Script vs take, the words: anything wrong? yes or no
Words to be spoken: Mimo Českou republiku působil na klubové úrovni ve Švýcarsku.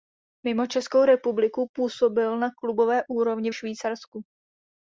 yes